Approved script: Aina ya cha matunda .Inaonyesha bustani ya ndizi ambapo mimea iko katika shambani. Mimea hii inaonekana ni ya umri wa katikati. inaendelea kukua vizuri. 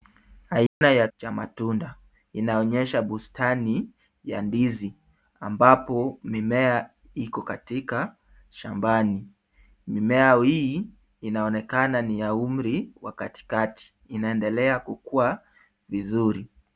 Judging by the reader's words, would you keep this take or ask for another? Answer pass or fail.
pass